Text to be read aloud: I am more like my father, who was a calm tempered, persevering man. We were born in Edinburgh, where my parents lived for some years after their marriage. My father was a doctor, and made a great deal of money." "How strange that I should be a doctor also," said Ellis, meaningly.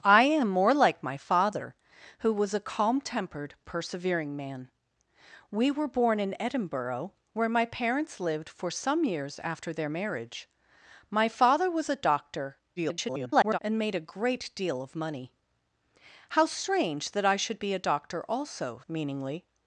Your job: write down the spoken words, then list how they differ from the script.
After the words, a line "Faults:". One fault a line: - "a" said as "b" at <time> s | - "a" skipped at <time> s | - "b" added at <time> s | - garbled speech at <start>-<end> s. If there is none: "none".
I am more like my father, who was a calm tempered, persevering man. We were born in Edinburgh, where my parents lived for some years after their marriage. My father was a doctor, [garbled] and made a great deal of money." "How strange that I should be a doctor also," meaningly.
Faults:
- garbled speech at 12.8-13.6 s
- "said Ellis" skipped at 18.8 s